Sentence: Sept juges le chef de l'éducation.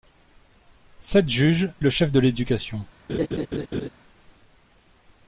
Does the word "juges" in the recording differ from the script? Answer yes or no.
no